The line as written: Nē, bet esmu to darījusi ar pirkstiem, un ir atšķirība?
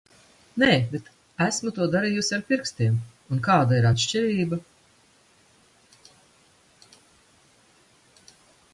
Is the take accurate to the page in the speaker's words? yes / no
no